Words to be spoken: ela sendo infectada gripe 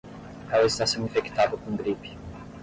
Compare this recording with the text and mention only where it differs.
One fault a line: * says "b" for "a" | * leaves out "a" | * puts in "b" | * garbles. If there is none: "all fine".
* puts in "está"
* puts in "com"